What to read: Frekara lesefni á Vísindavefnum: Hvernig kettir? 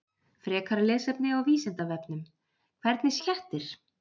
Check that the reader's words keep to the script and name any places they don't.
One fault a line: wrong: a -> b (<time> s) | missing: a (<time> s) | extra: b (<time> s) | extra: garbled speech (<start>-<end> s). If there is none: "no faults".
no faults